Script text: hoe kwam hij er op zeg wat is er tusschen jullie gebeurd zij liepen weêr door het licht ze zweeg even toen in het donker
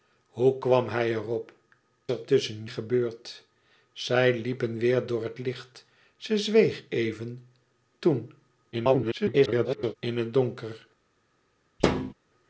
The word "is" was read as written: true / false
false